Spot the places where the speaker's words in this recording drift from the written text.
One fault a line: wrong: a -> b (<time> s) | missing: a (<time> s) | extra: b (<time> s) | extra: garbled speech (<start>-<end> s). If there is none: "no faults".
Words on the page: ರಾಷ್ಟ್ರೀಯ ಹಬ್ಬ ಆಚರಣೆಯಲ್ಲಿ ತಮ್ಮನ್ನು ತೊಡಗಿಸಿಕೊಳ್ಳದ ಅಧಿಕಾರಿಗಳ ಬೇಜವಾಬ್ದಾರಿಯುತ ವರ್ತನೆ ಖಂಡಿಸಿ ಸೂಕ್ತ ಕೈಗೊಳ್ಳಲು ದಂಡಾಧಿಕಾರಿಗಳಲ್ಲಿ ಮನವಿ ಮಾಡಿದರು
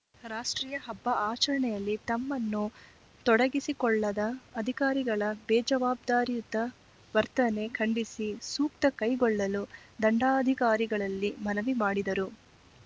no faults